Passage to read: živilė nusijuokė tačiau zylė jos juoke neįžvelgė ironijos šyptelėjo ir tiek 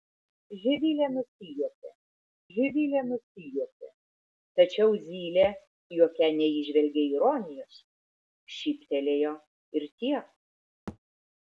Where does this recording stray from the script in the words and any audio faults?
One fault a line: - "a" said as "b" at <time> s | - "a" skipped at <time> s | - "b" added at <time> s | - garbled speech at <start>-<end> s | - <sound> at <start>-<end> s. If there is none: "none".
- "živilė nusijuokė" added at 2.5 s
- "jos" skipped at 5.5 s
- thud at 10.9-11.0 s